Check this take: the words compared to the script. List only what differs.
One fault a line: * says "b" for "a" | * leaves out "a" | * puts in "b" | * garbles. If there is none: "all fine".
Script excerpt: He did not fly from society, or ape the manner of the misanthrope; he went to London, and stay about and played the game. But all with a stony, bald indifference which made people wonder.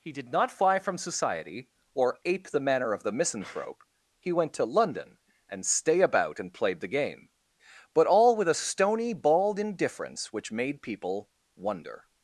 all fine